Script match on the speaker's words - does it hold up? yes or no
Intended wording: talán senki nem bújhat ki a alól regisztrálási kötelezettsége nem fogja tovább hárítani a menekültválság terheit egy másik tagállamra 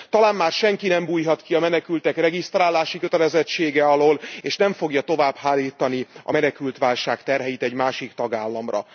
no